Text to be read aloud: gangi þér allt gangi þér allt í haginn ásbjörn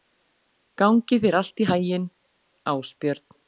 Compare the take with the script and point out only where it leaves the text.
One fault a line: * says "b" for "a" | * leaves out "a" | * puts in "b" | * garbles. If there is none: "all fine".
* leaves out "gangi þér allt"